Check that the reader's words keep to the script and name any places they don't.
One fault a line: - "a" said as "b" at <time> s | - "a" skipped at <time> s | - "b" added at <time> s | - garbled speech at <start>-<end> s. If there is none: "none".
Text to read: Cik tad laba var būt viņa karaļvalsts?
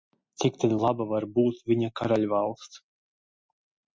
none